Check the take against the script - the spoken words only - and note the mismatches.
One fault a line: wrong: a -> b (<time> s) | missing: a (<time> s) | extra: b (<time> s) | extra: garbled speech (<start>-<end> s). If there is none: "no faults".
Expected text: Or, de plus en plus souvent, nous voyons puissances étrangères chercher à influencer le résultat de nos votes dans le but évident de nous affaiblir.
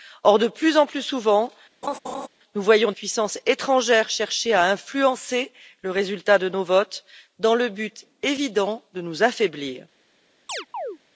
no faults